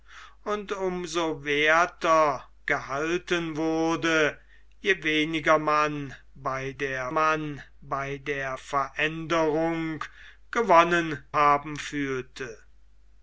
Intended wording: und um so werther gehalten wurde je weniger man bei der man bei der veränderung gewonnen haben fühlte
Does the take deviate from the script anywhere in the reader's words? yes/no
no